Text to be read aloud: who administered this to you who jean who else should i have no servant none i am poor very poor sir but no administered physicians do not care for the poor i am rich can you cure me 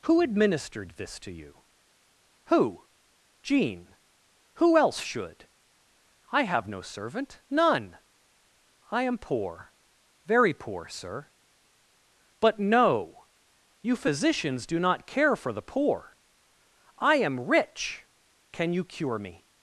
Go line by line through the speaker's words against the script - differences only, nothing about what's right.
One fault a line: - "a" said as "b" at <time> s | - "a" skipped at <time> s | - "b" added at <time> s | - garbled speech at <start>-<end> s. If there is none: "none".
- "administered" said as "you" at 13.8 s